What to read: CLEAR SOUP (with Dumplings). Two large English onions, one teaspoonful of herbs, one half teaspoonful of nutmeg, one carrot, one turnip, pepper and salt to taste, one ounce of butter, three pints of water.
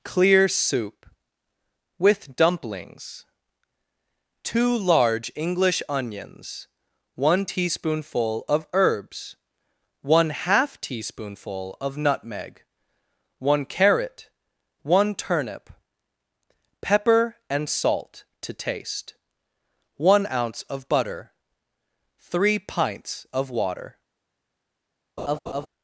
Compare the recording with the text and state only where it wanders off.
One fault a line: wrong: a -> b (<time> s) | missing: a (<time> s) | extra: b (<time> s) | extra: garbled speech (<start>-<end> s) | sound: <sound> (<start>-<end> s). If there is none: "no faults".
sound: laugh (25.2-25.7 s)